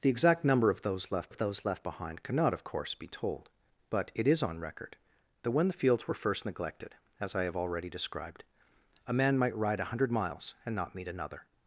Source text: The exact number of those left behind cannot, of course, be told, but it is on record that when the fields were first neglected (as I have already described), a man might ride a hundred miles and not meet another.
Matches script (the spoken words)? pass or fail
fail